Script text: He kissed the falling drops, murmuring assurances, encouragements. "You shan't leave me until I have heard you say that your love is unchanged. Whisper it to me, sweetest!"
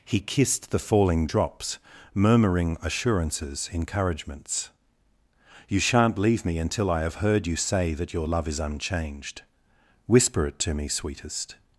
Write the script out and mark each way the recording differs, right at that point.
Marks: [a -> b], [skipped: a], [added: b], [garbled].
He kissed the falling drops, murmuring assurances, encouragements. "You shan't leave me until I have heard you say that your love is unchanged. Whisper it to me, sweetest!"